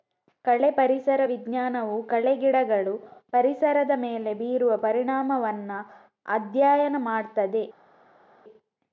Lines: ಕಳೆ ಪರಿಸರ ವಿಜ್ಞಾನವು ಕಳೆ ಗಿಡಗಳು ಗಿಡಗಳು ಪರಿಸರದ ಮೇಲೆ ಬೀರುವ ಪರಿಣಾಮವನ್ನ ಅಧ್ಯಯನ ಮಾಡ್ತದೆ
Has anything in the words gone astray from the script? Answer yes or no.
yes